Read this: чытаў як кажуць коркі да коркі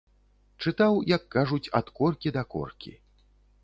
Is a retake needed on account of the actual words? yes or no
yes